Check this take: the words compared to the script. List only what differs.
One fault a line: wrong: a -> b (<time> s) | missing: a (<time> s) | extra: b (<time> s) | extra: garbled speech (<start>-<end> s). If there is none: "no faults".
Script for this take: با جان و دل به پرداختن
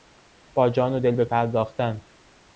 no faults